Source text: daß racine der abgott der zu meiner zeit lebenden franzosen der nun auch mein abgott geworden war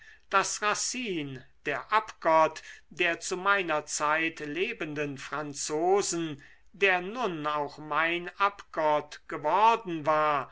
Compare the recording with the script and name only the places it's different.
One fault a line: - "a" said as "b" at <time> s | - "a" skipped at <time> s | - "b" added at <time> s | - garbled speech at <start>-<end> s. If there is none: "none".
none